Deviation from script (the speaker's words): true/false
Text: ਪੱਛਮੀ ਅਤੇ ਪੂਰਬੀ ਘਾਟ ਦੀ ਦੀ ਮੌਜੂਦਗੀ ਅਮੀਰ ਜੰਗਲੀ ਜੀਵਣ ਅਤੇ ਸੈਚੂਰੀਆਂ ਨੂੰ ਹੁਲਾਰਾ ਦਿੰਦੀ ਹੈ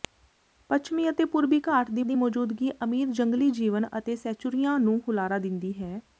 false